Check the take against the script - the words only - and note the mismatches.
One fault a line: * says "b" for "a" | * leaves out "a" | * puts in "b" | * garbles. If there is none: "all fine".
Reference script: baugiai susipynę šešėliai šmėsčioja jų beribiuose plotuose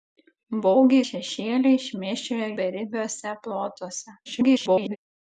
* leaves out "susipynę"
* leaves out "jų"
* garbles